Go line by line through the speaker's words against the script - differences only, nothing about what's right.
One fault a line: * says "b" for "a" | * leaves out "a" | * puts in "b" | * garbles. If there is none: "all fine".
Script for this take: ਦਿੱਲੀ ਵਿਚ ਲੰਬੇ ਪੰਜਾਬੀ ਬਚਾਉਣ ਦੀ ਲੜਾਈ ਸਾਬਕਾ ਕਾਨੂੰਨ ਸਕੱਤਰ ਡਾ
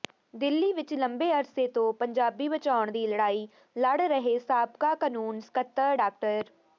* puts in "ਅਰਸੇ ਤੋਂ"
* puts in "ਲੜ ਰਹੇ"